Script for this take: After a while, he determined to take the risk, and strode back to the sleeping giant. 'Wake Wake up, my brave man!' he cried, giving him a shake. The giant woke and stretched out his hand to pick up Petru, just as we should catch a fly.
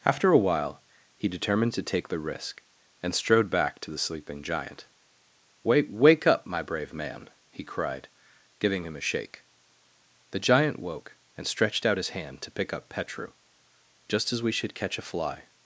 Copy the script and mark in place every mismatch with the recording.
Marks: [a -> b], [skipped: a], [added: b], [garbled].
After a while, he determined to take the risk, and strode back to the sleeping giant. 'Wake Wake up, my brave man!' he cried, giving him a shake. The giant woke and stretched out his hand to pick up Petru, just as we should catch a fly.